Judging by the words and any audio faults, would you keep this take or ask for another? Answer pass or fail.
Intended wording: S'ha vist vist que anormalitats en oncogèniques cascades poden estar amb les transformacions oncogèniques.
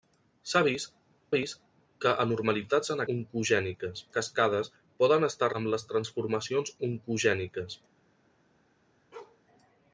fail